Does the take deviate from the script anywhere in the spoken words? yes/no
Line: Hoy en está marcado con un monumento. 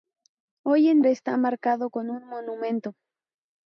no